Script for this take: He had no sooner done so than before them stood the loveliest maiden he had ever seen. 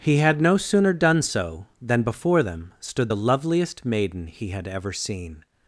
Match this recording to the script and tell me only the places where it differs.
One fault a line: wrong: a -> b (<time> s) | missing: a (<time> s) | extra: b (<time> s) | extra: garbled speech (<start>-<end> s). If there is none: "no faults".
no faults